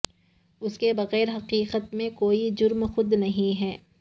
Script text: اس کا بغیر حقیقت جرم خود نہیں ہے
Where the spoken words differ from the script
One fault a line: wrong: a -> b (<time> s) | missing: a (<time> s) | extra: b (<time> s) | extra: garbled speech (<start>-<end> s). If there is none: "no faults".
wrong: کا -> کے (0.8 s)
extra: میں کوئی (1.9 s)